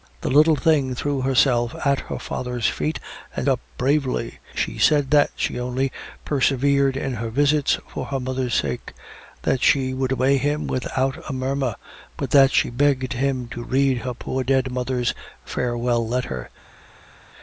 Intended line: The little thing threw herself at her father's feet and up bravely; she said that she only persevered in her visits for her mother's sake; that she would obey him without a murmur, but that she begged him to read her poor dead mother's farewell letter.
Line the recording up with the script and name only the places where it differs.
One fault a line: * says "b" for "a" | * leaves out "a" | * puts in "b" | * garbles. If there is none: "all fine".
all fine